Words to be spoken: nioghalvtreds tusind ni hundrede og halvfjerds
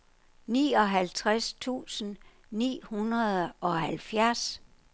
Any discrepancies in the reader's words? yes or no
no